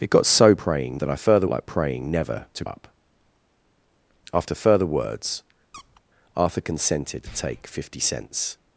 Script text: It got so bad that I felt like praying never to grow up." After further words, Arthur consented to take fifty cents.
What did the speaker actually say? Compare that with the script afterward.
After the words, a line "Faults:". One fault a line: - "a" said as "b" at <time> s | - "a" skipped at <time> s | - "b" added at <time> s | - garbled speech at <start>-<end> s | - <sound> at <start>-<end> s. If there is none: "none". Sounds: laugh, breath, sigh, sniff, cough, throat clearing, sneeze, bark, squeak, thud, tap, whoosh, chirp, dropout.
It got so praying that I further like praying never to up." After further words, Arthur consented to take fifty cents.
Faults:
- "bad" said as "praying" at 0.5 s
- "felt" said as "further" at 1.2 s
- "grow" skipped at 2.6 s
- squeak at 5.7-6.0 s